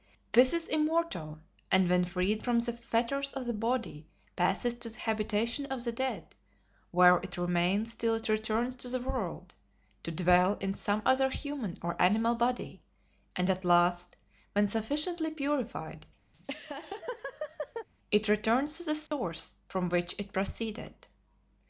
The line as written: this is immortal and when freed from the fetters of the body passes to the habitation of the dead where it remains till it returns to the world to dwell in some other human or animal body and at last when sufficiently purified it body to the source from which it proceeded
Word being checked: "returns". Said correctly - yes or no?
yes